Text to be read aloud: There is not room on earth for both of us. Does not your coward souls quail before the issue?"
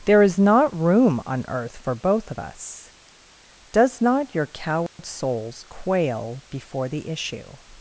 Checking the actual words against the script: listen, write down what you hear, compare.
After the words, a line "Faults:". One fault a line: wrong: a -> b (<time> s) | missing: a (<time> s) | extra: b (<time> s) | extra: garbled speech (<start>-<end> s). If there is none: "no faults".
There is not room on earth for both of us. Does not your coward souls quail before the issue?"
Faults:
no faults